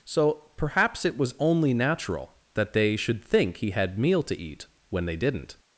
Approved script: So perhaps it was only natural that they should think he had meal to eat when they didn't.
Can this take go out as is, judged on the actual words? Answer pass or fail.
pass